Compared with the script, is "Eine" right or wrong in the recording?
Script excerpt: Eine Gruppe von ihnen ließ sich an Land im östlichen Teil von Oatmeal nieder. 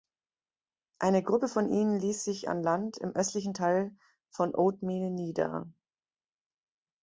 right